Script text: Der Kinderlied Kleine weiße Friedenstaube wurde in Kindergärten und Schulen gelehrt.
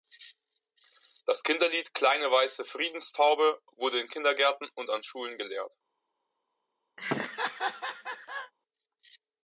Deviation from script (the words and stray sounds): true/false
true